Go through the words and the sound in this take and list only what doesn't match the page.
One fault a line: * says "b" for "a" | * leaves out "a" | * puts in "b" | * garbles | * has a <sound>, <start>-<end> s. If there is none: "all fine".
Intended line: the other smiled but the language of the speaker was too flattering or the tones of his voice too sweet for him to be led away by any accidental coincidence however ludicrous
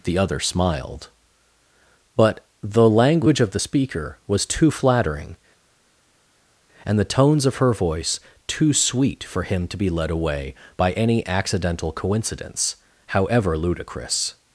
* says "and" for "or"
* says "her" for "his"